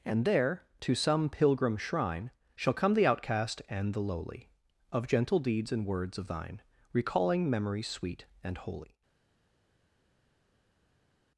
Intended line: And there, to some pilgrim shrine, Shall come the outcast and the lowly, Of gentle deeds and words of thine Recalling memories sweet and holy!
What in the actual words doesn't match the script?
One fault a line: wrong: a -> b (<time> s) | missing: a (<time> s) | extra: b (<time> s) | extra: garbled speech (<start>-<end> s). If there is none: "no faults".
no faults